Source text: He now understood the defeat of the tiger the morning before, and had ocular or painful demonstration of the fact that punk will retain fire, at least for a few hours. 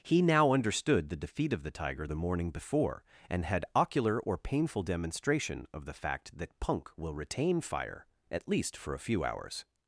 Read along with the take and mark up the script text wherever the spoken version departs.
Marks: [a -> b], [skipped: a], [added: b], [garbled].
He now understood the defeat of the tiger the morning before, and had ocular or painful demonstration of the fact that punk will retain fire, at least for a few hours.